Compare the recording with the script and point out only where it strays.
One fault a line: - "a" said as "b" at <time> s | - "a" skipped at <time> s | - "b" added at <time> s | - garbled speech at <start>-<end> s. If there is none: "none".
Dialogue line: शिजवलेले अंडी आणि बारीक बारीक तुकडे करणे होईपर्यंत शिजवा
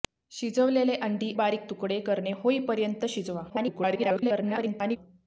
- "आणि बारीक" skipped at 1.3 s
- garbled speech at 3.5-5.0 s